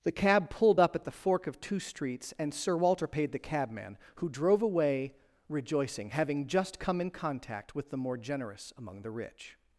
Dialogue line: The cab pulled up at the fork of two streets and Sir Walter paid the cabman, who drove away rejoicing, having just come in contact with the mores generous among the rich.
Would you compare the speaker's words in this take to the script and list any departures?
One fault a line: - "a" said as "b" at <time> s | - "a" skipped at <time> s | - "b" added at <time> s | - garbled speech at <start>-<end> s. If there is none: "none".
- "mores" said as "more" at 8.0 s